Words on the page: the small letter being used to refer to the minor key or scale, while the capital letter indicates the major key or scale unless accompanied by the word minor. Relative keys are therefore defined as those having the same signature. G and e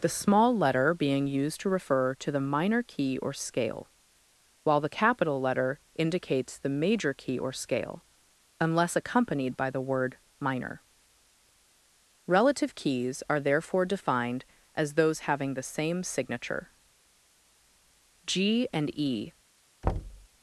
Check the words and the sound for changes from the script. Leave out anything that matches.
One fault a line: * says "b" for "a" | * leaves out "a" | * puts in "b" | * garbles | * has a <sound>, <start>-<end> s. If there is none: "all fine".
* has a thud, 19.8-20.3 s